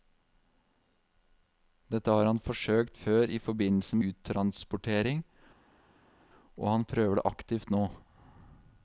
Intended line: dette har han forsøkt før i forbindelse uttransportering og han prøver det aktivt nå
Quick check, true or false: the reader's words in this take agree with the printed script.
true